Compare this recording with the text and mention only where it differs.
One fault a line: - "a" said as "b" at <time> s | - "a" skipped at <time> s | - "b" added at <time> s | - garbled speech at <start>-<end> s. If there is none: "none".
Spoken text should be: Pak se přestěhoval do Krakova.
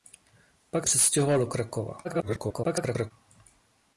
- "se" skipped at 0.9 s
- garbled speech at 2.0-3.1 s